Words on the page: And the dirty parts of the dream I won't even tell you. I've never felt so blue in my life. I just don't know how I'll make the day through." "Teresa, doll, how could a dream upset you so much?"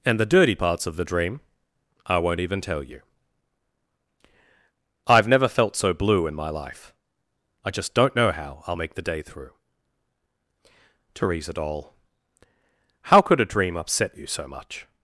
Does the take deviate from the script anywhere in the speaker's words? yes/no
no